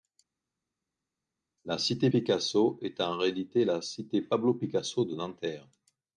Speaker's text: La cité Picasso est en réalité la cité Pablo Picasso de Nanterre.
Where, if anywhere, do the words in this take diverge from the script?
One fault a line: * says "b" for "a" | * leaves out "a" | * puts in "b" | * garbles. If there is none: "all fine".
all fine